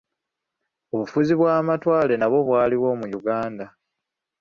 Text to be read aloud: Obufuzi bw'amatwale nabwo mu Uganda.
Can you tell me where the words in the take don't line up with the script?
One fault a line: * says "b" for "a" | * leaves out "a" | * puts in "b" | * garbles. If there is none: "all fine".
* puts in "bwaliwo"